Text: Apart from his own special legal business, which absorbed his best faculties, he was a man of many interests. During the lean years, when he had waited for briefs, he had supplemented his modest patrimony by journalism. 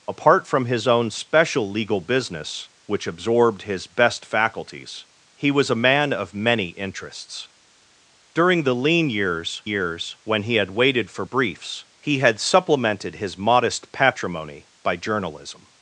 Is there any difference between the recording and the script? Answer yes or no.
yes